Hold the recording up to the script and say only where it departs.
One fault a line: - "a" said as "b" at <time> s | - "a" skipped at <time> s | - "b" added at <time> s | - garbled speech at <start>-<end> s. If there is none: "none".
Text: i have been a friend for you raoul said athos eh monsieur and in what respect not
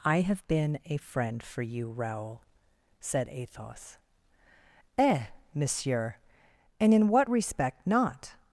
none